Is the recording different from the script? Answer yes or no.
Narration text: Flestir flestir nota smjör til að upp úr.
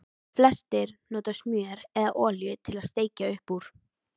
yes